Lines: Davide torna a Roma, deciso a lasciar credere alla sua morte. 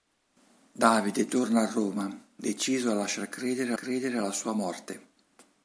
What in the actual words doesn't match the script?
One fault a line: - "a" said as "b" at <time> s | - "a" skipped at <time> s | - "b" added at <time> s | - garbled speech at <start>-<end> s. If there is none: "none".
- "credere" added at 3.7 s